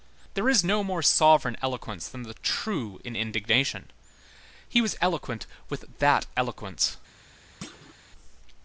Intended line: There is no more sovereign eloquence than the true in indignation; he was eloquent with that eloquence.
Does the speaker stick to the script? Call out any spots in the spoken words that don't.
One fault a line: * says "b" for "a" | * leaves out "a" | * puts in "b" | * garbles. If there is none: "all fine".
all fine